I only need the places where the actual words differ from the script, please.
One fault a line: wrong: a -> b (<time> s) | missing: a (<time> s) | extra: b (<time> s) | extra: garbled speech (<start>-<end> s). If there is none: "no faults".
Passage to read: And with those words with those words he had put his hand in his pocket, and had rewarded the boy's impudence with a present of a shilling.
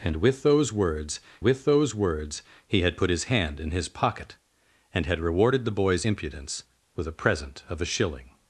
no faults